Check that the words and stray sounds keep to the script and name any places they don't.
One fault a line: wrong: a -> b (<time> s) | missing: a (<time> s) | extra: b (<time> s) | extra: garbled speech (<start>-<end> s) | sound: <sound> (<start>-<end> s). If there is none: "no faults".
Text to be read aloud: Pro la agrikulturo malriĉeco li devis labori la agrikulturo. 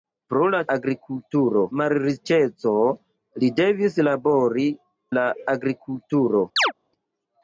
sound: chirp (6.6-6.7 s)